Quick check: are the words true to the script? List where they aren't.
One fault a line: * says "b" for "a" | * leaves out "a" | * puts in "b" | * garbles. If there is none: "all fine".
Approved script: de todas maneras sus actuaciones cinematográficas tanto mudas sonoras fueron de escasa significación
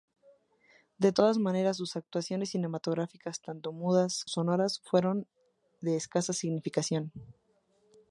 all fine